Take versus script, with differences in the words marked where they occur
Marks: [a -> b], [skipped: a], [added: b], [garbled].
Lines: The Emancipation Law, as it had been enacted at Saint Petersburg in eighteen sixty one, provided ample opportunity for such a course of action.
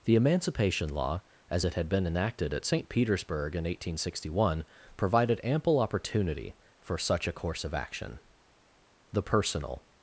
The Emancipation Law, as it had been enacted at Saint Petersburg in eighteen sixty one, provided ample opportunity for such a course of action. [added: The personal]